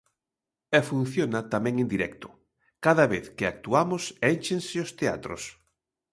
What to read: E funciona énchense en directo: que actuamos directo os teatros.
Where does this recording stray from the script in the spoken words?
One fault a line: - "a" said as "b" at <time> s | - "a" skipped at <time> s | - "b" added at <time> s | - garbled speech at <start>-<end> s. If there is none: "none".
- "énchense" said as "tamén" at 1.5 s
- "cada vez" added at 2.8 s
- "directo" said as "énchense" at 4.3 s